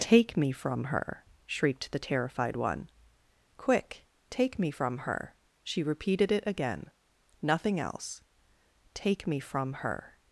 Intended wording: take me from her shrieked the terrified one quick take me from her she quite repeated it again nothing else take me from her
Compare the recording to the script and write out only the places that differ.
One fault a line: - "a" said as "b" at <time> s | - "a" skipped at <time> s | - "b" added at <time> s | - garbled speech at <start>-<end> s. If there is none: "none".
- "quite" skipped at 5.8 s